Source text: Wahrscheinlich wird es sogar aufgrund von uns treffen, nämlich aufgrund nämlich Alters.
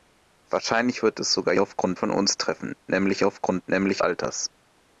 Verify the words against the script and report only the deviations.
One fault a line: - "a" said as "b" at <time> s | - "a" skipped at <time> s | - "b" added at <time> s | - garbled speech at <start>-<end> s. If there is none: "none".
none